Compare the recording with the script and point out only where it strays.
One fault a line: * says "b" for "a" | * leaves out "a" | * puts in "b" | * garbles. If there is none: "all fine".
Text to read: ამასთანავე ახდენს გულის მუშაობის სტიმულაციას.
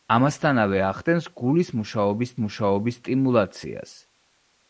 * puts in "მუშაობის"